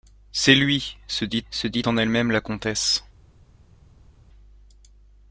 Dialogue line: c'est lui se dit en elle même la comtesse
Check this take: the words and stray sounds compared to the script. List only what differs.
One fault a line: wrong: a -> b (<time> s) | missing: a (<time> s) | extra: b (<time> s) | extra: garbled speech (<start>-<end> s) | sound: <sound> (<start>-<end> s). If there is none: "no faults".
extra: se dit (1.5 s)